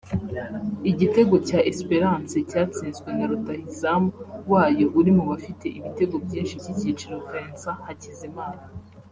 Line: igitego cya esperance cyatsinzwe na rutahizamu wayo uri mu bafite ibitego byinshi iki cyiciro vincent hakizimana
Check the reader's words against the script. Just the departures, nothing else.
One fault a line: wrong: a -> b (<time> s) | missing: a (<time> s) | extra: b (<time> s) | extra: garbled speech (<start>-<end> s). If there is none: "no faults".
no faults